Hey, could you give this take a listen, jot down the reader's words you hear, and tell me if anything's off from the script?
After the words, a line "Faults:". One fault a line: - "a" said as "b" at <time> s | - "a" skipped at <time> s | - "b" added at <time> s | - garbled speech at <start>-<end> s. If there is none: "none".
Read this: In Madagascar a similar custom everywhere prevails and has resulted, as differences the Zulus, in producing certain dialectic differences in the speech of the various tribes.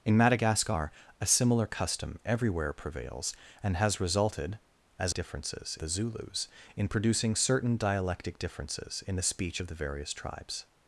In Madagascar a similar custom everywhere prevails and has resulted, as differences the Zulus, in producing certain dialectic differences in the speech of the various tribes.
Faults:
none